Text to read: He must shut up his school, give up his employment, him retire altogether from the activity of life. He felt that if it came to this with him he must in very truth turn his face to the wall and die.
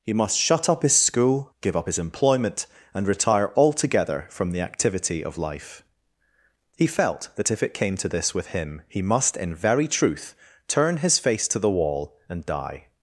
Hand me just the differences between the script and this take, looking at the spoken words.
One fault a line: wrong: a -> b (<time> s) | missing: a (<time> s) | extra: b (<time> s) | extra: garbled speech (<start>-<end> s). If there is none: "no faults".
wrong: him -> and (2.9 s)